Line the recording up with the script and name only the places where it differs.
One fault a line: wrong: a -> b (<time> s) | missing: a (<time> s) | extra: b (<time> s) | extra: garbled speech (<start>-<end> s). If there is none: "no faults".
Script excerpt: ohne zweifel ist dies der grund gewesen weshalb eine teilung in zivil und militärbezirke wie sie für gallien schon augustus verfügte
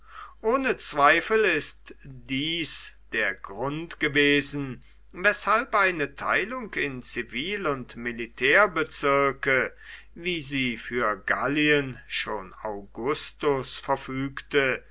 no faults